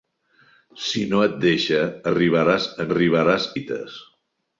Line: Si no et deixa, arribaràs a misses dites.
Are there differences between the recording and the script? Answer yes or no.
yes